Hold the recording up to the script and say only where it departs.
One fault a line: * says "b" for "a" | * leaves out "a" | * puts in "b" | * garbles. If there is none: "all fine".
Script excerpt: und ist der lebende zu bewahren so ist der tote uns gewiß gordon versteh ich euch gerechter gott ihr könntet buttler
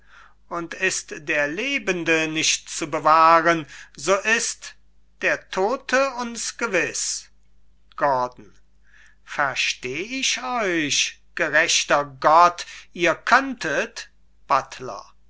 * puts in "nicht"